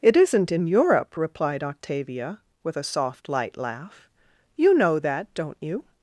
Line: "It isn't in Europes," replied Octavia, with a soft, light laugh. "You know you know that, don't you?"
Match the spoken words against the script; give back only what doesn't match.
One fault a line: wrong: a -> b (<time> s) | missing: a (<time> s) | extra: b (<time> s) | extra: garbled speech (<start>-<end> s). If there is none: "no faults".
wrong: Europes -> Europe (0.7 s)
missing: you know (5.0 s)